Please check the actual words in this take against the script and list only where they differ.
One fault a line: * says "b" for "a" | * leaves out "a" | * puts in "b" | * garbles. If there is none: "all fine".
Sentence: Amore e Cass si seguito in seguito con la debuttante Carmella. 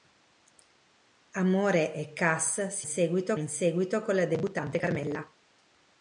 all fine